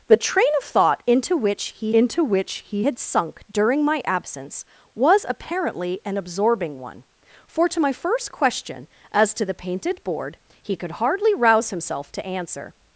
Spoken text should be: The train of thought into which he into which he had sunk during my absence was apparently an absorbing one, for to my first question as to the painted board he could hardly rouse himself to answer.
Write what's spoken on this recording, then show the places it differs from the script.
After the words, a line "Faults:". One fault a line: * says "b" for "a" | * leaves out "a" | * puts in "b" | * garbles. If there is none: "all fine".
The train of thought into which he into which he had sunk during my absence was apparently an absorbing one, for to my first question as to the painted board he could hardly rouse himself to answer.
Faults:
all fine